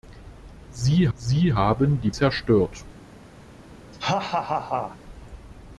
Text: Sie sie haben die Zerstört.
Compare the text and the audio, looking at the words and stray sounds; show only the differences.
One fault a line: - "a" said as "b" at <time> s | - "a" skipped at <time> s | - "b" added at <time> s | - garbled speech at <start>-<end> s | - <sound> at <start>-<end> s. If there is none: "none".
- laugh at 3.9-5.0 s